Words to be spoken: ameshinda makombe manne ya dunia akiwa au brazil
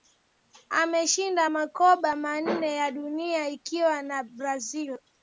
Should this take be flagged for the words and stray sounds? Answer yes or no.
yes